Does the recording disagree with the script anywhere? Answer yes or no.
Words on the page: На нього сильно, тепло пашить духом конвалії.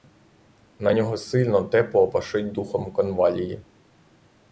no